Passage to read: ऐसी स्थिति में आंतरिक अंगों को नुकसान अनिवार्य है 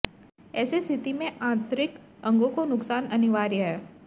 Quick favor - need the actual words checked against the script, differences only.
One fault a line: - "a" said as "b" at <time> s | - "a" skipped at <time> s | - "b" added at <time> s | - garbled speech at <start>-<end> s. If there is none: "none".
none